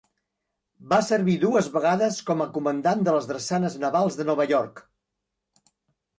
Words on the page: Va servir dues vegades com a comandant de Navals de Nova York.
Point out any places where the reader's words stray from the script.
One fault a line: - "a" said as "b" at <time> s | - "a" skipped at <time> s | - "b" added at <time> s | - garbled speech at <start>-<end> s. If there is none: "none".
- "les Drassanes" added at 3.2 s